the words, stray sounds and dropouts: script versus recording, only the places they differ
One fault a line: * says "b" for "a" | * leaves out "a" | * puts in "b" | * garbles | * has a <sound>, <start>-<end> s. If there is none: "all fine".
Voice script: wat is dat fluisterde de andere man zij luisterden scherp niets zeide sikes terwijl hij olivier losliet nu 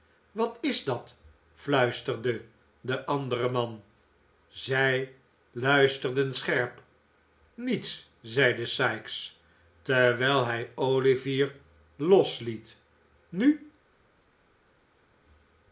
all fine